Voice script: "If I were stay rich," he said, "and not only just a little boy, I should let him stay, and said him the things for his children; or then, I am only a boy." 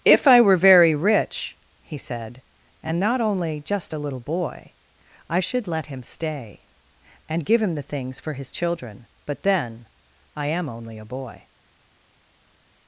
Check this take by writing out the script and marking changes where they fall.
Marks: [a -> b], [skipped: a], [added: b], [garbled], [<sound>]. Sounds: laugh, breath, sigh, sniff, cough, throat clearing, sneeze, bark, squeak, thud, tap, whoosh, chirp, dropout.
"If I were [stay -> very] rich," he said, "and not only just a little boy, I should let him stay, and [said -> give] him the things for his children; [or -> but] then, I am only a boy."